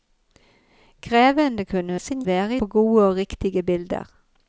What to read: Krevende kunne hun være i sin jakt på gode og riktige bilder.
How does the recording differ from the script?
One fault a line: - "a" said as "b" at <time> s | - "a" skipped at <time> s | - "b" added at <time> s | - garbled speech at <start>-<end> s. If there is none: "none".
- "hun være" skipped at 1.9 s
- "jakt" said as "være" at 2.3 s